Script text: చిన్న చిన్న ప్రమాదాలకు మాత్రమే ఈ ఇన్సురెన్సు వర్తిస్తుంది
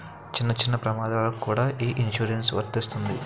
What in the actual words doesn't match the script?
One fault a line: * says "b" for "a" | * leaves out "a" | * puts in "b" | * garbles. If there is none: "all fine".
* says "కూడా" for "మాత్రమే"